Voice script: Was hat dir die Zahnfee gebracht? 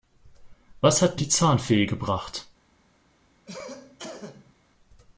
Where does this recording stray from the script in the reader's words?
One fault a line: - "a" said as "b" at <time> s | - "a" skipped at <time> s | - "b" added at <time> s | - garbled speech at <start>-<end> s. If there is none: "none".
- "dir" skipped at 1.2 s